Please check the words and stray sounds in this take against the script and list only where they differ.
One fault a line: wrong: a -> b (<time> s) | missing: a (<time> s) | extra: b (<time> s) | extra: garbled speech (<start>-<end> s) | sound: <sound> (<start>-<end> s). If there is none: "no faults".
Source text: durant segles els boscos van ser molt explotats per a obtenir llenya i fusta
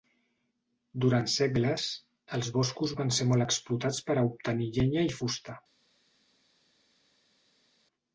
no faults